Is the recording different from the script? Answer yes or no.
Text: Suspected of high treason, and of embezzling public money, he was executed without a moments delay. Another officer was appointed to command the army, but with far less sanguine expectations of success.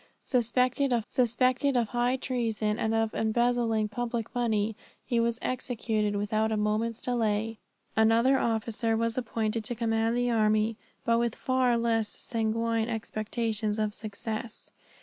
yes